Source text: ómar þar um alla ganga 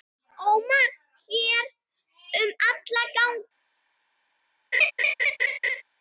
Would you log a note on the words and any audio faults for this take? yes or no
yes